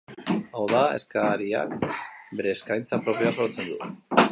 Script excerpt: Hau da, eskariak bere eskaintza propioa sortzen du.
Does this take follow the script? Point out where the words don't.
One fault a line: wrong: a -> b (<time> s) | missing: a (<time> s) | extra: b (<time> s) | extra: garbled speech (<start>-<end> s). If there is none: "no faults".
no faults